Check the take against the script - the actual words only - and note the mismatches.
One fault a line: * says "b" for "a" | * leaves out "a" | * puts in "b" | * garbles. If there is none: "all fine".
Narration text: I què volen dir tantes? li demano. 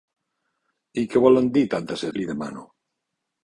all fine